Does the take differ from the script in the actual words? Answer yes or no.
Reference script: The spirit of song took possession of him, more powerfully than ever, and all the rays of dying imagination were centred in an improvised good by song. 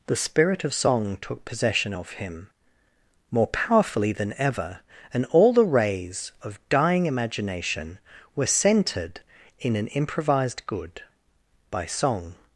no